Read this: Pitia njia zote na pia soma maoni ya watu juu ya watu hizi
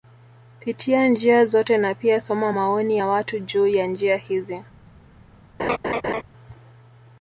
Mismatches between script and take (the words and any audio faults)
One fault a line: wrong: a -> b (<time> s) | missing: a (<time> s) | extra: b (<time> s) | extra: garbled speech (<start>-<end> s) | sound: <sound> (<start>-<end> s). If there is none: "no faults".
wrong: watu -> njia (3.9 s)
sound: laugh (5.6-6.2 s)